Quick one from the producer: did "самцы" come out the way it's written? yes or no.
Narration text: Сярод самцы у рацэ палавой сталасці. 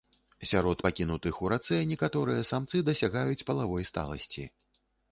no